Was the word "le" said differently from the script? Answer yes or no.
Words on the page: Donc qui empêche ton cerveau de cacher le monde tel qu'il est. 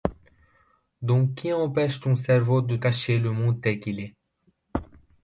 no